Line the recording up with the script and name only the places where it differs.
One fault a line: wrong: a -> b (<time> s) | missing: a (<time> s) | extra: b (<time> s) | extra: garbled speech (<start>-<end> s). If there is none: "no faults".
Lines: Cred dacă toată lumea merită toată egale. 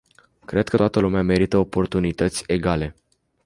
wrong: dacă -> că (0.7 s)
wrong: toată -> oportunități (1.6 s)